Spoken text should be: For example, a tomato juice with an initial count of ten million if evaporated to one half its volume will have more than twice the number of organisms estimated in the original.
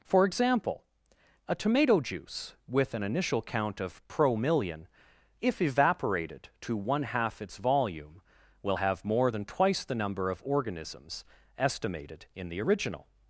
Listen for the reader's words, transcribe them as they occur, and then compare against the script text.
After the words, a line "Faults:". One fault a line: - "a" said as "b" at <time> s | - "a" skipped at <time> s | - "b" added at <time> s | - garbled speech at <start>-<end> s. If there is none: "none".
For example, a tomato juice with an initial count of pro million if evaporated to one half its volume will have more than twice the number of organisms estimated in the original.
Faults:
- "ten" said as "pro" at 4.1 s